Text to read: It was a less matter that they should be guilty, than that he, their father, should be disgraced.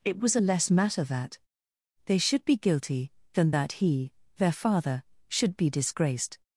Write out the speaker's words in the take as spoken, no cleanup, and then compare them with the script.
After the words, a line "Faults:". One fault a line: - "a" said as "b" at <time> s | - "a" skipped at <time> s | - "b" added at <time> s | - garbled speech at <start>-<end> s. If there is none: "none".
It was a less matter that they should be guilty, than that he, their father, should be disgraced.
Faults:
none